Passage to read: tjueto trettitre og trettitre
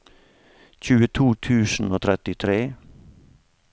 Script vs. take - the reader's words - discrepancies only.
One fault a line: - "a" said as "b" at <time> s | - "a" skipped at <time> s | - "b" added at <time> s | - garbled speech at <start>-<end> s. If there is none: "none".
- "trettitre" said as "tusen" at 1.5 s